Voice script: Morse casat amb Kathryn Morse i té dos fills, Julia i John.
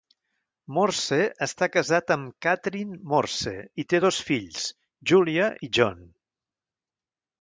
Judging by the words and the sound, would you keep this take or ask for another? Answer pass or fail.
fail